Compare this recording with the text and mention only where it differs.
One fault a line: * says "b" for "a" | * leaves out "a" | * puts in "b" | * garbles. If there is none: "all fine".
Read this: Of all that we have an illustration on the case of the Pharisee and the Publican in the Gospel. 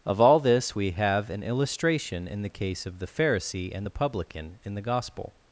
* says "this" for "that"
* says "in" for "on"